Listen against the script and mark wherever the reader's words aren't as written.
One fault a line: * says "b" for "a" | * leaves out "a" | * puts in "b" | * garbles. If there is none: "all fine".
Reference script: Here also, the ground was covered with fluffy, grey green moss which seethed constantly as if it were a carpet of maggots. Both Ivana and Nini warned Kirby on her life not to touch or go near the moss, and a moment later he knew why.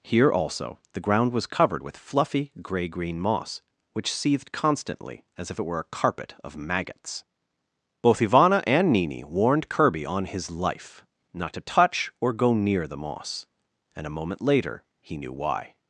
* says "his" for "her"